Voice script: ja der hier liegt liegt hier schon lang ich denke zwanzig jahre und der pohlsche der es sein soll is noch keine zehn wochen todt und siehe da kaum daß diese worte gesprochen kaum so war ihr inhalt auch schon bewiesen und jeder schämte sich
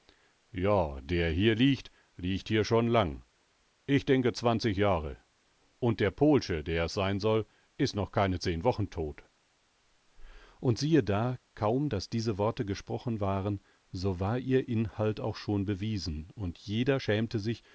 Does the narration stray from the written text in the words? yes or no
yes